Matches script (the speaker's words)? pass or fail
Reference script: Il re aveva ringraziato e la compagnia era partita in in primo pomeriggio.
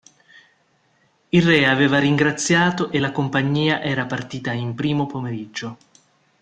fail